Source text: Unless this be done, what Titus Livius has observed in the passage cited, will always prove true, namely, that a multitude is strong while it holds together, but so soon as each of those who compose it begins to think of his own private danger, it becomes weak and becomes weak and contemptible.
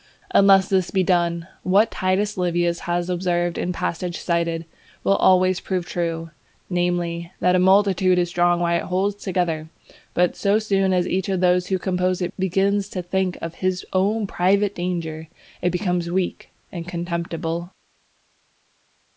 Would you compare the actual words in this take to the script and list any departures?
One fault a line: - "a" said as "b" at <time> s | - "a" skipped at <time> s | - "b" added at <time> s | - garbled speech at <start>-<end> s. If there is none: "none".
- "becomes weak and" skipped at 16.9 s